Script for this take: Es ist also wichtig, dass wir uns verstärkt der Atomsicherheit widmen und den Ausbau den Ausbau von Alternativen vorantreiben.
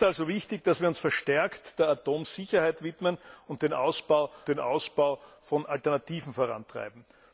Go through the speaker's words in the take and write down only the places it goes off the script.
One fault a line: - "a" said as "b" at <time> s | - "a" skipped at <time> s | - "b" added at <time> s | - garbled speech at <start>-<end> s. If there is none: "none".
none